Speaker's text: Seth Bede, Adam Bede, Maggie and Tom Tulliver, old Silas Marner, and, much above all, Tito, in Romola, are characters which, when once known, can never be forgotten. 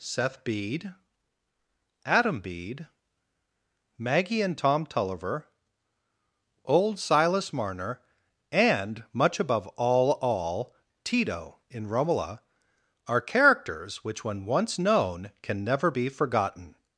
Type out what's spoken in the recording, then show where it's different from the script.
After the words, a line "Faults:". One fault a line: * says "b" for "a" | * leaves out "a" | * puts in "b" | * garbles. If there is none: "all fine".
Seth Bede, Adam Bede, Maggie and Tom Tulliver, old Silas Marner, and, much above all all, Tito, in Romola, are characters which, when once known, can never be forgotten.
Faults:
* puts in "all"